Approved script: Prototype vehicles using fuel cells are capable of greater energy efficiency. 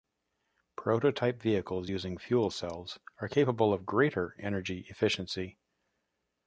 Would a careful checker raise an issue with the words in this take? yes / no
no